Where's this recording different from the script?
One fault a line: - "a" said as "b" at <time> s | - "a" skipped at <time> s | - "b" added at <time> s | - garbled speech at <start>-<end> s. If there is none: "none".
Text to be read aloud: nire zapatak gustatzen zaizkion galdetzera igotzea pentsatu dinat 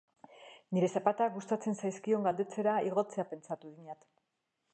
none